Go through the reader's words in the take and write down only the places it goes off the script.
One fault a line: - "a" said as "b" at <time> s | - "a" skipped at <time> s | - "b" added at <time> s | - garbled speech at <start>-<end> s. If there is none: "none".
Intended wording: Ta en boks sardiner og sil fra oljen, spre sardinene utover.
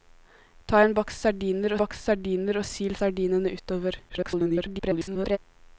- "boks sardiner" added at 1.8 s
- "fra oljen spre" skipped at 3.0 s
- garbled speech at 4.1-5.4 s